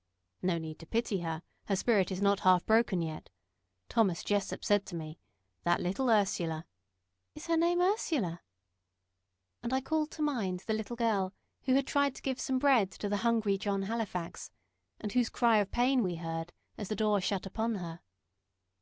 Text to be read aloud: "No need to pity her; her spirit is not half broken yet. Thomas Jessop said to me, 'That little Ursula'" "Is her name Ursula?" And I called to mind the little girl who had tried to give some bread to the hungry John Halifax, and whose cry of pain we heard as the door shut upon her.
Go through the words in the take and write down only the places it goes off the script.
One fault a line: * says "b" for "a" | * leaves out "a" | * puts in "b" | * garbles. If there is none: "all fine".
all fine